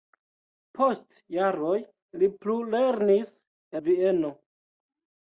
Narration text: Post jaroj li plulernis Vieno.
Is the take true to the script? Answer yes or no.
yes